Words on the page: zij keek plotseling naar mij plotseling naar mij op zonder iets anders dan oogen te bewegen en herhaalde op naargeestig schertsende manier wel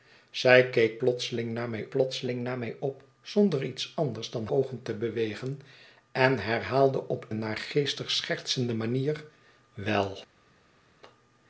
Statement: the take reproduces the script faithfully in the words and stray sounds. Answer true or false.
true